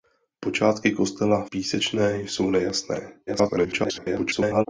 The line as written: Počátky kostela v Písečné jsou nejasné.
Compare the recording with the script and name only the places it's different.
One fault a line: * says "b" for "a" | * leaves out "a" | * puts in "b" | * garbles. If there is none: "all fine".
* leaves out "v"
* garbles